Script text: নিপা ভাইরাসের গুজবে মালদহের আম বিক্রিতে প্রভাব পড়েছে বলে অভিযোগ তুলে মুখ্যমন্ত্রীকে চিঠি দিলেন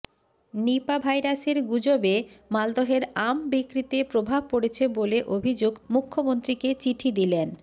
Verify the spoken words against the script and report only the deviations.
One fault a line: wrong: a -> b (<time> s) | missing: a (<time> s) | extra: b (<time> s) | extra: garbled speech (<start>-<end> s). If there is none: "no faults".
missing: তুলে (5.7 s)